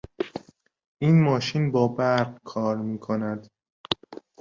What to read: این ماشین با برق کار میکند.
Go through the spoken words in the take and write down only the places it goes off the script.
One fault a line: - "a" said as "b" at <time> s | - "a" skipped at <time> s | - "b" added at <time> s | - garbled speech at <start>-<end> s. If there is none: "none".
none